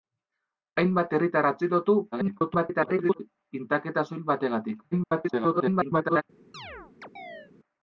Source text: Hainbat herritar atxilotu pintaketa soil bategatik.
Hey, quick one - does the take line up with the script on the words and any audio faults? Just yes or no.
no